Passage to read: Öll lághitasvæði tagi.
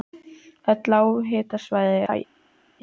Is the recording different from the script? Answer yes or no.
no